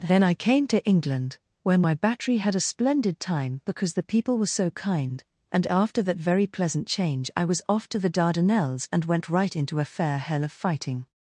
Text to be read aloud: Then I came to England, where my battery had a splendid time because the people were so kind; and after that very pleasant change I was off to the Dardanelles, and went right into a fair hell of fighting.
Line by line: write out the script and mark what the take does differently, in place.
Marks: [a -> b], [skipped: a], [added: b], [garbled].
Then I came to England, where my battery had a splendid time because the people were so kind; and after that very pleasant change I was off to the Dardanelles, and went right into a fair hell of fighting.